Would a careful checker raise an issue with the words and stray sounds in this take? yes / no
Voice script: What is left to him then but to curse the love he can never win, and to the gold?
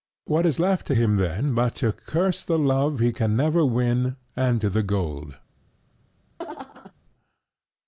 yes